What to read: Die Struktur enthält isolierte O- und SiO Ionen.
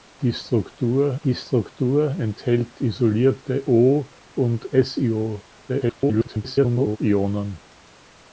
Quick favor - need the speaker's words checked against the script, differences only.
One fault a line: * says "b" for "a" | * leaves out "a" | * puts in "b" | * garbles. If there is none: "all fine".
* puts in "die Struktur"
* garbles